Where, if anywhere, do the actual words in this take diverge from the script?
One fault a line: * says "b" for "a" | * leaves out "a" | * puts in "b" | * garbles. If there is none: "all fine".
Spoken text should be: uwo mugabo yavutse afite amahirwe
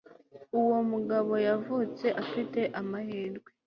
all fine